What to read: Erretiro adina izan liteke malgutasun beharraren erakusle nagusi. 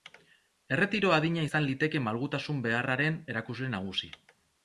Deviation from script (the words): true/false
false